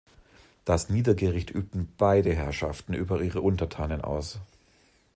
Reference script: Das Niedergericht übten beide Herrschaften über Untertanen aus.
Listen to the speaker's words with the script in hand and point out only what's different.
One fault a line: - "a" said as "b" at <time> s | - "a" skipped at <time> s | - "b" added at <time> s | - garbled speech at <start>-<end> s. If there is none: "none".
- "ihre" added at 3.2 s